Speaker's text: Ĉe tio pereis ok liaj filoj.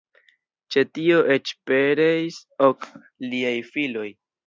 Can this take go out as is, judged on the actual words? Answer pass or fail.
fail